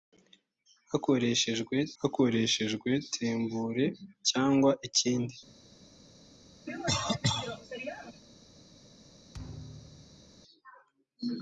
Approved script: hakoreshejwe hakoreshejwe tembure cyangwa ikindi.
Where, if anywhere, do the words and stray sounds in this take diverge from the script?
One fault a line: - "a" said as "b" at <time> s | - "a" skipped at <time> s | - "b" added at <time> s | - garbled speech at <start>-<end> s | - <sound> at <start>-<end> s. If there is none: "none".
- cough at 6.7-8.2 s
- thud at 9.3-10.4 s